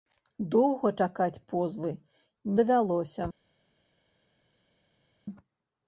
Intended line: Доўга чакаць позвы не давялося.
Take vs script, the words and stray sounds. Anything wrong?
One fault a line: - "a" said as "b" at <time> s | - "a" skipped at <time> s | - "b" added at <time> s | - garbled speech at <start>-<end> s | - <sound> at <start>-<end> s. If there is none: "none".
- "не" skipped at 1.9 s